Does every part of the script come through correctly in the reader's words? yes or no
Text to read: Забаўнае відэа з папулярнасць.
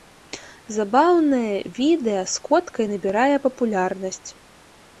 no